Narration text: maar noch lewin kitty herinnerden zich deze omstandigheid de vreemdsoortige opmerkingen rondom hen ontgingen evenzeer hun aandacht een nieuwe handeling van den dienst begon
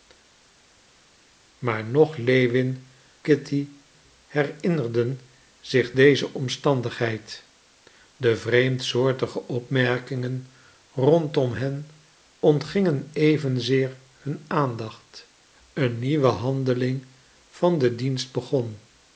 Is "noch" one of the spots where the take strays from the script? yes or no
no